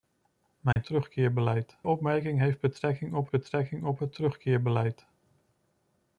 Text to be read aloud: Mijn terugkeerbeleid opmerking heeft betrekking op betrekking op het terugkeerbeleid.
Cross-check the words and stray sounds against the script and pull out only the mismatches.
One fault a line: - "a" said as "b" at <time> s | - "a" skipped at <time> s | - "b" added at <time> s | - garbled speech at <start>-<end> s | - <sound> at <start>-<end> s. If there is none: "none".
- dropout at 0.7-0.8 s